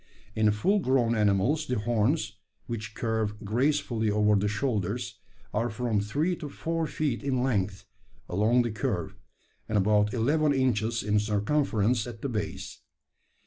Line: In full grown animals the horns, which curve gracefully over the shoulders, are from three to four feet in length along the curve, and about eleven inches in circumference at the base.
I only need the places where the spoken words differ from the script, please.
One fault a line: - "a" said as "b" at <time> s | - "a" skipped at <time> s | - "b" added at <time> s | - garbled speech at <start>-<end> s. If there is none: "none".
none